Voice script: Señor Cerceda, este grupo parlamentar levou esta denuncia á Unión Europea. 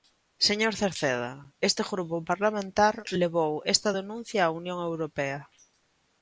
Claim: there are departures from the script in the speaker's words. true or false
false